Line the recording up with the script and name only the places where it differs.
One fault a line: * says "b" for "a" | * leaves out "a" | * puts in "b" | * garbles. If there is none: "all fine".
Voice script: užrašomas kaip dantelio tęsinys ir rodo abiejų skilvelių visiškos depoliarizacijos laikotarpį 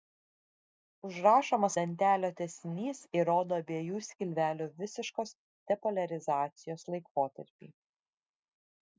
* leaves out "kaip"